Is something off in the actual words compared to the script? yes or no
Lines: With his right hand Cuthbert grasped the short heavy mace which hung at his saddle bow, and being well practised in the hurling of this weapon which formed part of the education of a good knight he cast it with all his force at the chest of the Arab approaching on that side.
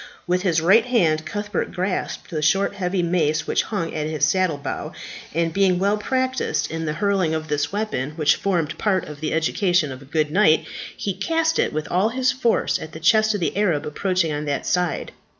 no